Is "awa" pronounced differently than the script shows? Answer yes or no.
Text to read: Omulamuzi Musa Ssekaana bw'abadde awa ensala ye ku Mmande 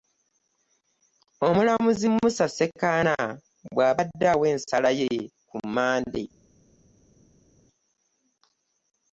no